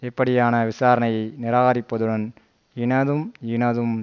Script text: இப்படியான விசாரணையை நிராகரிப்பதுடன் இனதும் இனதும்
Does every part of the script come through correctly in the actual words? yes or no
yes